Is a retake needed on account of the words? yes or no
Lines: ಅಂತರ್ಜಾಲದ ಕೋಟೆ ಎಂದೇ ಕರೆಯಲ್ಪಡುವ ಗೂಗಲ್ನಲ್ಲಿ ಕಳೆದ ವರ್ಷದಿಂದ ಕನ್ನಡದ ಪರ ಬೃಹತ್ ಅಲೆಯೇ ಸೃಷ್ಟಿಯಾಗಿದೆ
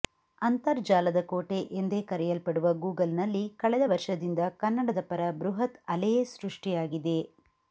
no